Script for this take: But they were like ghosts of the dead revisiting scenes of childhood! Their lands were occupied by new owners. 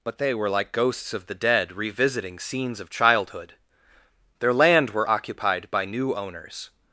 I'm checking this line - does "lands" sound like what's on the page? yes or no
no